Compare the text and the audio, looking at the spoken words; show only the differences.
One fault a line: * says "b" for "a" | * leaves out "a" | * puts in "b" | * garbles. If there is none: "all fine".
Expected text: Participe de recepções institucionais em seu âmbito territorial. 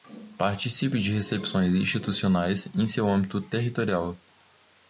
all fine